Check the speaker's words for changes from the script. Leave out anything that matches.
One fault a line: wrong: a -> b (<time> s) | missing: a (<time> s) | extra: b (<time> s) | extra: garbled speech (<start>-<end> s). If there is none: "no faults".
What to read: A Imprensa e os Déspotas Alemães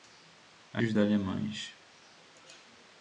missing: Imprensa (0.8 s)
missing: Déspotas (0.9 s)